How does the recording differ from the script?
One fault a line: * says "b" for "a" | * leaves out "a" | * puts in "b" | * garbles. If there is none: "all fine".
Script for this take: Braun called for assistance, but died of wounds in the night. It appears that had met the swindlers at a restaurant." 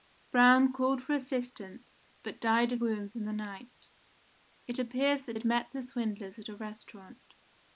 all fine